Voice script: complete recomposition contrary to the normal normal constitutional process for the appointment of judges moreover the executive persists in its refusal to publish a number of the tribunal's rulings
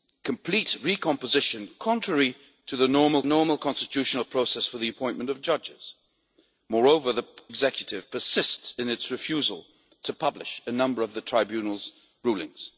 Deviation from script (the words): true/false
false